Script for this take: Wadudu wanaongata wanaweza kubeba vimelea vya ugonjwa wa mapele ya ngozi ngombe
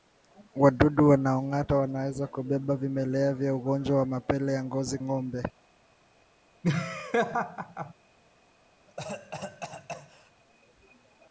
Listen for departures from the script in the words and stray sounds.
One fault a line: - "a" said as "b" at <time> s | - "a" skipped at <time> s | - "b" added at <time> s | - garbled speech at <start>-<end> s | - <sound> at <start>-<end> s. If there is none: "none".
- laugh at 6.6-7.9 s
- cough at 8.9-10.3 s